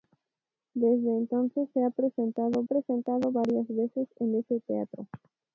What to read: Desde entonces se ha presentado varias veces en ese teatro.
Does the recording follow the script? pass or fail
fail